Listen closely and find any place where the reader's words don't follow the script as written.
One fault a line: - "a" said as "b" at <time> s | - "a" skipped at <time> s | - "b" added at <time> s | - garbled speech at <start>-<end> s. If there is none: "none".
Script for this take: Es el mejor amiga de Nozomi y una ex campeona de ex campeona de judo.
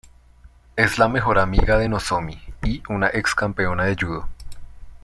- "el" said as "la" at 1.0 s
- "ex campeona de" skipped at 4.0 s